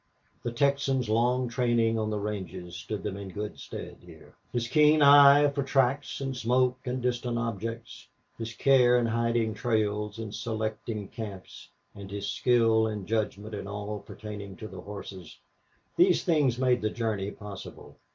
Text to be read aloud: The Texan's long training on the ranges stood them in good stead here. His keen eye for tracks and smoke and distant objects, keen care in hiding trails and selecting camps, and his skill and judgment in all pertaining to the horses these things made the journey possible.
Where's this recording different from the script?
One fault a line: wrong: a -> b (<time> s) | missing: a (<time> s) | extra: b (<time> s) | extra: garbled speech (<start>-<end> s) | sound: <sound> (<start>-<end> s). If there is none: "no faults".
wrong: keen -> his (8.3 s)